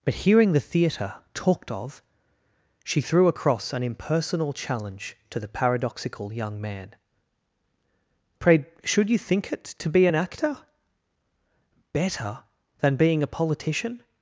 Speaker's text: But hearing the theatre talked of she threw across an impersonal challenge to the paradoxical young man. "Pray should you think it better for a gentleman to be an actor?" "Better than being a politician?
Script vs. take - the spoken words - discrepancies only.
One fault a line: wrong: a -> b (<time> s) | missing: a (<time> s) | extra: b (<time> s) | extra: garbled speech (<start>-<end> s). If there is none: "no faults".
missing: better for a gentleman (9.6 s)